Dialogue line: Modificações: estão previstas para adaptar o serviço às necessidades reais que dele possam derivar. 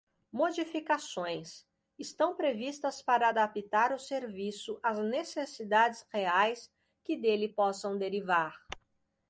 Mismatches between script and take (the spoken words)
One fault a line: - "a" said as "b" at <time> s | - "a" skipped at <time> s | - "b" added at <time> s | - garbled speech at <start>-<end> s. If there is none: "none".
none